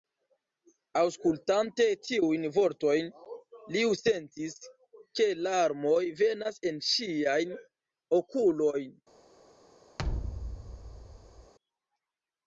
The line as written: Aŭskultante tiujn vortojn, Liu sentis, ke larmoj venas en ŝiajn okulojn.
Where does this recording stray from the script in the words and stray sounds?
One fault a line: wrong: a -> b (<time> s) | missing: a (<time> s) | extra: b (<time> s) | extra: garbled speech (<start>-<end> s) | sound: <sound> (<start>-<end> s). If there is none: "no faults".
sound: thud (10.0-11.5 s)